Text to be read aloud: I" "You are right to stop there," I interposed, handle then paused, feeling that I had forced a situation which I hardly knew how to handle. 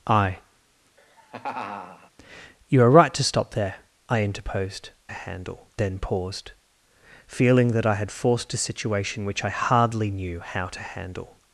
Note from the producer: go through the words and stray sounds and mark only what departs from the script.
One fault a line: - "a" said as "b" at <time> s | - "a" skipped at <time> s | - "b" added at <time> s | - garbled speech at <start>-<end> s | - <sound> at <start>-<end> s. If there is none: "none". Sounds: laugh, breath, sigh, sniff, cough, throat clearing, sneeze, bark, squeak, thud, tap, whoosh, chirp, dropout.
- laugh at 1.0-2.1 s